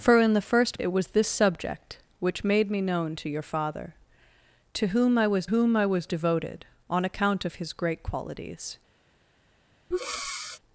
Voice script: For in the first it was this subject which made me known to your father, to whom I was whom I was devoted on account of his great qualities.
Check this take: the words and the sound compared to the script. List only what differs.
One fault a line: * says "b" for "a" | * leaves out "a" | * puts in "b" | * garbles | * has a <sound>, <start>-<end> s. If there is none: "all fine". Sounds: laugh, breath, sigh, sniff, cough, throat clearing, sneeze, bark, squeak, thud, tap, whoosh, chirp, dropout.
* has a breath, 9.9-10.6 s